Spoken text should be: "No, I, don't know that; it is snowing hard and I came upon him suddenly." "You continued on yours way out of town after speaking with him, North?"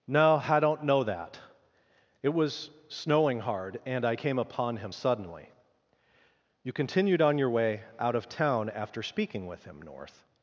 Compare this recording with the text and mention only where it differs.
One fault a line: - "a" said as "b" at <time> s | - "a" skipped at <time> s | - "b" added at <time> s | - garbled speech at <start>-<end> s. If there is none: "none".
- "is" said as "was" at 2.3 s
- "yours" said as "your" at 7.4 s